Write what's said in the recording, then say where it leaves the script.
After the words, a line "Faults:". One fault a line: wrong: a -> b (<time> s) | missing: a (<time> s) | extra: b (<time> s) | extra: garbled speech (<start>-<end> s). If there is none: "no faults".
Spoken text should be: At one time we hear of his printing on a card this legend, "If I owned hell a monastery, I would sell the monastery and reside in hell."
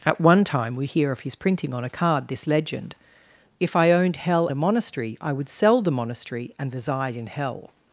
At one time we hear of his printing on a card this legend, "If I owned hell a monastery, I would sell the monastery and reside in hell."
Faults:
no faults